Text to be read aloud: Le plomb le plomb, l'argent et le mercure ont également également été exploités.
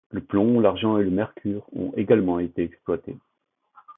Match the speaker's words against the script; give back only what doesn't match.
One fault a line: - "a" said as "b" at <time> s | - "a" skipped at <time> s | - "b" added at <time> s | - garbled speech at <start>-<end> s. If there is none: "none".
- "le plomb" skipped at 0.6 s
- "également" skipped at 2.4 s